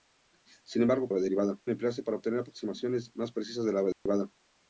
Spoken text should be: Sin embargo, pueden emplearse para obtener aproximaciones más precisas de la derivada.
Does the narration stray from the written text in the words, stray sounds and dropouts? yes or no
yes